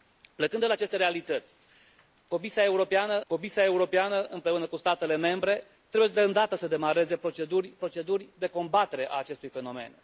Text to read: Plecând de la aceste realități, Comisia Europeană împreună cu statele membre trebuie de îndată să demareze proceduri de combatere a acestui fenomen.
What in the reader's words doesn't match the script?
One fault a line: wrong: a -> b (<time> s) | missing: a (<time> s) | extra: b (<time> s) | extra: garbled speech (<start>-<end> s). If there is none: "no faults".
extra: Comisia Europeană (3.3 s)
extra: proceduri (7.8 s)